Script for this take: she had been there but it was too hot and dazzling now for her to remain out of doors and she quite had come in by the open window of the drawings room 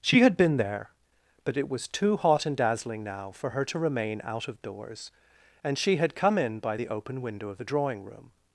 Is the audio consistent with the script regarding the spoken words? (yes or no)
no